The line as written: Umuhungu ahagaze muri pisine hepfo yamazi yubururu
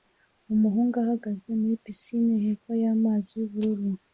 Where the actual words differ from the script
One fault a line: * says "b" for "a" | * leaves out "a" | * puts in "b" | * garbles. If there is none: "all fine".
all fine